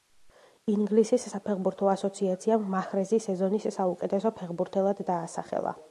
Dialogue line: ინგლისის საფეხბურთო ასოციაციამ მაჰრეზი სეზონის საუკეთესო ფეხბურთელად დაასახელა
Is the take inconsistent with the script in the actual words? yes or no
no